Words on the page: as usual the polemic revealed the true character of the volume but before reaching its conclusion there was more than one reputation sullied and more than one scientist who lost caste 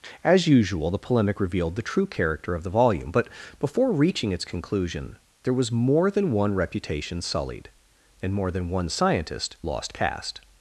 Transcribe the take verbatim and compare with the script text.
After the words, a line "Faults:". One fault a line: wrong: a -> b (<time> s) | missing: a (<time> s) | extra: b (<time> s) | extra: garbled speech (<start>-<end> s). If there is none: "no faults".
as usual the polemic revealed the true character of the volume but before reaching its conclusion there was more than one reputation sullied and more than one scientist lost caste
Faults:
missing: who (9.6 s)